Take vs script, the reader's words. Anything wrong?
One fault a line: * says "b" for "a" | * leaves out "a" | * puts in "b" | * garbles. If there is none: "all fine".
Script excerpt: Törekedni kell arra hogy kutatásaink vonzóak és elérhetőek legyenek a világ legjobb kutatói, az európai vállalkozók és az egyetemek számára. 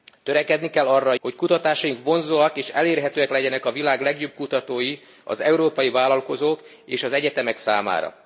all fine